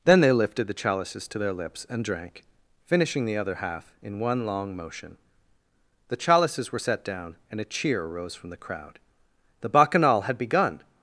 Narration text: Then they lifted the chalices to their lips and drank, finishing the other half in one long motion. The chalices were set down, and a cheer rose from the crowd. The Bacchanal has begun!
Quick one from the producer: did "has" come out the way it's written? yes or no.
no